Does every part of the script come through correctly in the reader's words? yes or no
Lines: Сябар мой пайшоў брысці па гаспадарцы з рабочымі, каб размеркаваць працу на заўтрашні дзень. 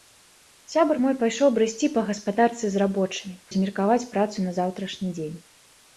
no